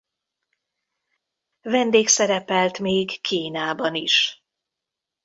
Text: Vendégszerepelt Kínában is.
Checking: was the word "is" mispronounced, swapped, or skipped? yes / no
no